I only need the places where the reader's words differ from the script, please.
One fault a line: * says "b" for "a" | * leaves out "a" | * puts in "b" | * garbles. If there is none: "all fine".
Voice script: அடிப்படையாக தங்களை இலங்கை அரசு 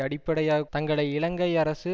all fine